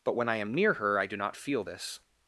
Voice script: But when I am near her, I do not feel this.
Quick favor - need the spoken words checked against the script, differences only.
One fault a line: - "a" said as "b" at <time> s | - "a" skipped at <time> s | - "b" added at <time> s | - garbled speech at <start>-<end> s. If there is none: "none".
none